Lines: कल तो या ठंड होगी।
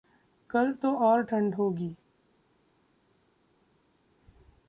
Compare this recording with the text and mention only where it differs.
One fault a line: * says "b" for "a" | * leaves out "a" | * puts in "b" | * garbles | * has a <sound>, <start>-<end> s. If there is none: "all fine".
* says "और" for "या"